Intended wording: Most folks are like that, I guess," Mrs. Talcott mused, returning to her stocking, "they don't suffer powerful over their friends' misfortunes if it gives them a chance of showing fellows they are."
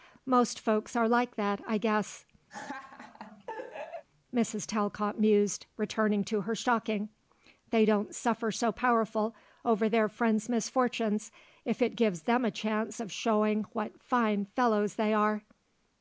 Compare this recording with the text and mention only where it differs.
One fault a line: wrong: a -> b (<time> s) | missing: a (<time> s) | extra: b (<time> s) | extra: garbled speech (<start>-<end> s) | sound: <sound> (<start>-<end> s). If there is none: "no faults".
sound: laugh (2.5-4.0 s)
extra: so (8.5 s)
extra: what fine (13.7 s)